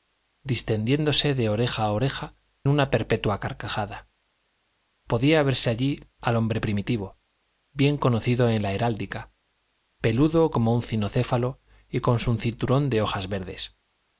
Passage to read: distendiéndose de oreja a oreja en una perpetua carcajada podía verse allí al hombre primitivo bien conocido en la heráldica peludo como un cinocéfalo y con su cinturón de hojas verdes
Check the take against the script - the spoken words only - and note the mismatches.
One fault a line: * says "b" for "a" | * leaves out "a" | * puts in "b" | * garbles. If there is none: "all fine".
* leaves out "en"